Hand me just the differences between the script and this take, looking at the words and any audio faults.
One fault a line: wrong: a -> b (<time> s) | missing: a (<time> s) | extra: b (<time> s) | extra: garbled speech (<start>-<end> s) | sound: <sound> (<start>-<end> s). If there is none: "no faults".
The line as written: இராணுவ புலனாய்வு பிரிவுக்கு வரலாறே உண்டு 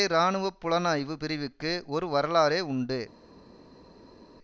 extra: ஒரு (1.9 s)